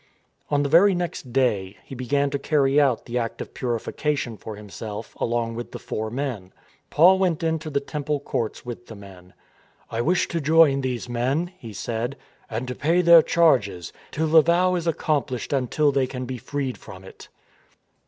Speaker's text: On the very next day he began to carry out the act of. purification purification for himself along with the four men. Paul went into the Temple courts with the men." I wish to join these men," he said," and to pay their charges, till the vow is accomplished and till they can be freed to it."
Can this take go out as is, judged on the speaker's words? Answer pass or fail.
fail